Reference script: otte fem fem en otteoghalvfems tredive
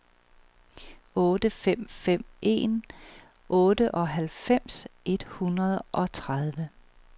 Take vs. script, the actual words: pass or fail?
fail